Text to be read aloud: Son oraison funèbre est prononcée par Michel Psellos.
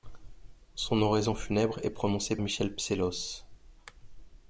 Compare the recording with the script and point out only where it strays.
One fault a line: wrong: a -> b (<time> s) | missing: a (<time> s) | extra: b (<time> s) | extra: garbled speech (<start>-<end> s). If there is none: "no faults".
missing: par (2.4 s)